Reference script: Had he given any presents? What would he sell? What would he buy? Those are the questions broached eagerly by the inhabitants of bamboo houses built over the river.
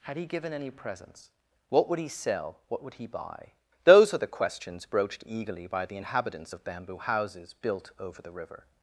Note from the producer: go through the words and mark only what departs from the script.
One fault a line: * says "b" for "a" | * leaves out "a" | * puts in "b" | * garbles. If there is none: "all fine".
all fine